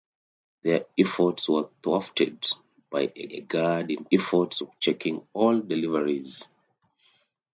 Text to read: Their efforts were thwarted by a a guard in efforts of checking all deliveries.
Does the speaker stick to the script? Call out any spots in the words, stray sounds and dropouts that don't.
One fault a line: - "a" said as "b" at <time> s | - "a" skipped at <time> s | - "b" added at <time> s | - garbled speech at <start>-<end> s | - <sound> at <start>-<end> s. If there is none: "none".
none